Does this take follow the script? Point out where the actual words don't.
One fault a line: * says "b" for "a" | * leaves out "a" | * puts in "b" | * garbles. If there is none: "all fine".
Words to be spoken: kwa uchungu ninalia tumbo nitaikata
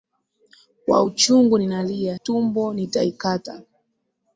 all fine